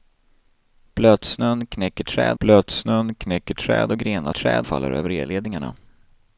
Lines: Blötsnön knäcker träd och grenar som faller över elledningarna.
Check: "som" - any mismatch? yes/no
yes